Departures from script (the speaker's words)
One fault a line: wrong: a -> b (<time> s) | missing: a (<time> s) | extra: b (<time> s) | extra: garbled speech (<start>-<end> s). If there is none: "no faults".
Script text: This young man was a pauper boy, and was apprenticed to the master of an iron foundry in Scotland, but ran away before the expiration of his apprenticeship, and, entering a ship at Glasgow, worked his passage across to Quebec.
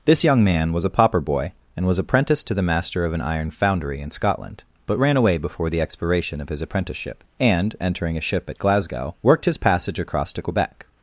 no faults